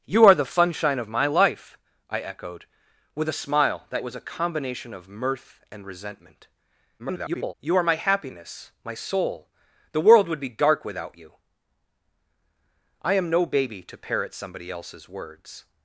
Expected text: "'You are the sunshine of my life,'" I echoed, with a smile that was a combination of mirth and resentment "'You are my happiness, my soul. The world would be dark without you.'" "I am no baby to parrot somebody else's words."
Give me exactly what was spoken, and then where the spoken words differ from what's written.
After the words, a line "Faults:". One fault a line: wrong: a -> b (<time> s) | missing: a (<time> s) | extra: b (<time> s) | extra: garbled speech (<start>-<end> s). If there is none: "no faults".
"'You are the sunshine of my life,'" I echoed, with a smile that was a combination of mirth and resentment [garbled] "'You are my happiness, my soul. The world would be dark without you.'" "I am no baby to parrot somebody else's words."
Faults:
extra: garbled speech (7.0-7.5 s)